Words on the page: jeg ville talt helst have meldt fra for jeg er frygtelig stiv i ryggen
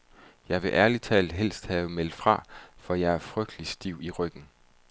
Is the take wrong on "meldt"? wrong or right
right